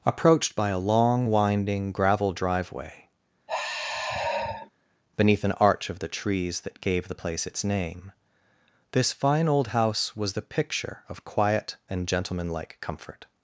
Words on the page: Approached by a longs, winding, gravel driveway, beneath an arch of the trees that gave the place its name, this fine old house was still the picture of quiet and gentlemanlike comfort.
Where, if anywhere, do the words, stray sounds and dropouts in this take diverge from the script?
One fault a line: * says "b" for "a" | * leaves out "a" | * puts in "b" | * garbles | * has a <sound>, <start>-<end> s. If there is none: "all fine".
* says "long" for "longs"
* has a sigh, 3.5-4.7 s
* leaves out "still"